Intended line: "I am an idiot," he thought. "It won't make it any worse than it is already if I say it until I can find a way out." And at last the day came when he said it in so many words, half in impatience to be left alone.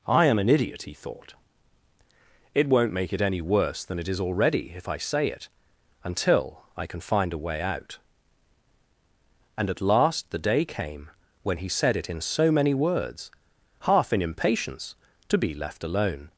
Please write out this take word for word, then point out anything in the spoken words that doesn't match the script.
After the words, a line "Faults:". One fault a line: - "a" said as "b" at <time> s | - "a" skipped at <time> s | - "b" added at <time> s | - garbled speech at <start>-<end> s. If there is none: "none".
"I am an idiot," he thought. "It won't make it any worse than it is already if I say it until I can find a way out." And at last the day came when he said it in so many words, half in impatience to be left alone.
Faults:
none